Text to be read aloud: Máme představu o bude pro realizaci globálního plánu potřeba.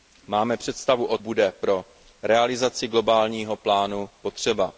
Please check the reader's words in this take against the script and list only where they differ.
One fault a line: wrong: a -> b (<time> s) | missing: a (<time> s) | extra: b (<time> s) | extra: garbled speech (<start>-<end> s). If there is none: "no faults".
no faults